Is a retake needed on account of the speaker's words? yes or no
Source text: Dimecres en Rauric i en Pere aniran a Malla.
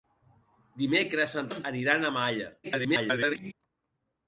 yes